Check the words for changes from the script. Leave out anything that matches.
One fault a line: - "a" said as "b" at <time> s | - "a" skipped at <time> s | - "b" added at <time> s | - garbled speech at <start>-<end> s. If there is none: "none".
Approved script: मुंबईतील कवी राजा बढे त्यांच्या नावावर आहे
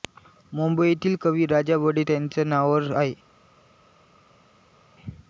none